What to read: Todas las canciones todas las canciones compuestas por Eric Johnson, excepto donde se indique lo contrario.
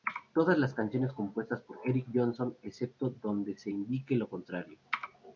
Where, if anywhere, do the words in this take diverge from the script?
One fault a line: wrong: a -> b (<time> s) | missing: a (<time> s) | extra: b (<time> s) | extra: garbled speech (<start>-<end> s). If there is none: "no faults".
missing: todas las canciones (1.1 s)